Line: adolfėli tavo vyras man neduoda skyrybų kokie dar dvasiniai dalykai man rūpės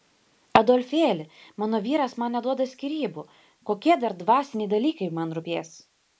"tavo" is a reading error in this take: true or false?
true